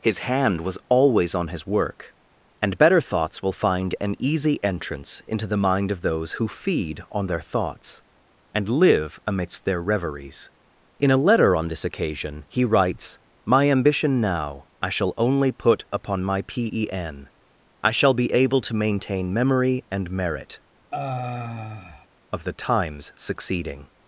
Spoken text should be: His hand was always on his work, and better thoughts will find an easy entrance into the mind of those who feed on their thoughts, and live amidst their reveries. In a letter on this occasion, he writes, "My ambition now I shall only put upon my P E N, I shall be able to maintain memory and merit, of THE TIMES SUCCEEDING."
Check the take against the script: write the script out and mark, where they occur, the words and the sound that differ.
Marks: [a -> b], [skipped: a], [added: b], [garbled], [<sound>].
His hand was always on his work, and better thoughts will find an easy entrance into the mind of those who feed on their thoughts, and live amidst their reveries. In a letter on this occasion, he writes, "My ambition now I shall only put upon my P E N, I shall be able to maintain memory and merit, [sigh] of THE TIMES SUCCEEDING."